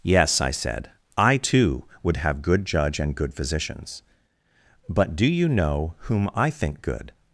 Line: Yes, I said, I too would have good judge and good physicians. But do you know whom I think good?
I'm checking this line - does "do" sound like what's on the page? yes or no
yes